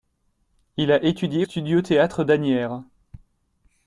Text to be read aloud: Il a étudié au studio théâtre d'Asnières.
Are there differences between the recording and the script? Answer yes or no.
yes